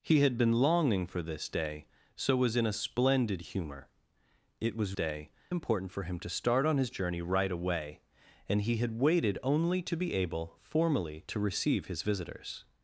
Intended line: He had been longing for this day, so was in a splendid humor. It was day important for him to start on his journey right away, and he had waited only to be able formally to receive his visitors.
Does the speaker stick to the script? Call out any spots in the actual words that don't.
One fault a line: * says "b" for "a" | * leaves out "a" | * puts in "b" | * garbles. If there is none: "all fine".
all fine